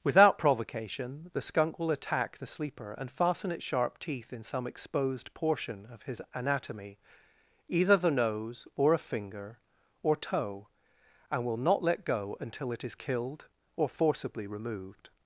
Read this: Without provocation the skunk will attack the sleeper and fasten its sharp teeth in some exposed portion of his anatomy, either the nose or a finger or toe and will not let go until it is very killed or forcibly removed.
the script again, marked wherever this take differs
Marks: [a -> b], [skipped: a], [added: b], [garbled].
Without provocation the skunk will attack the sleeper and fasten its sharp teeth in some exposed portion of his anatomy, either the nose or a finger or toe and will not let go until it is [skipped: very] killed or forcibly removed.